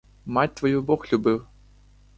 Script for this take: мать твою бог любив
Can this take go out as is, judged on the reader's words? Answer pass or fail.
pass